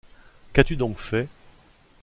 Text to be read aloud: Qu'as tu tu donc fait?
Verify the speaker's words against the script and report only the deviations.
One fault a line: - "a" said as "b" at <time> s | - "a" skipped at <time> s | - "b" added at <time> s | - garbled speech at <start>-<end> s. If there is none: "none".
- "tu" skipped at 0.8 s